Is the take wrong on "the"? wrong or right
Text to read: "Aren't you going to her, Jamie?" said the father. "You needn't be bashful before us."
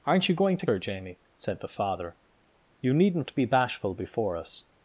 right